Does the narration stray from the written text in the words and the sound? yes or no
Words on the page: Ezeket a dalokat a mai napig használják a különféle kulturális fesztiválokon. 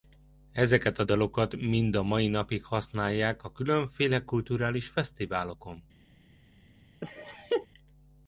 yes